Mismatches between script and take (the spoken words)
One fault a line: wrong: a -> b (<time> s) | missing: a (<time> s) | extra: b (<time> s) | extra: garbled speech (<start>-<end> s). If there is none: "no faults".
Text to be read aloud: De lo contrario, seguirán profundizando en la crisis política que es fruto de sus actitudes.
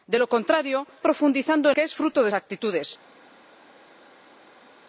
missing: seguirán (0.9 s)
missing: la crisis política (1.8 s)
missing: sus (2.3 s)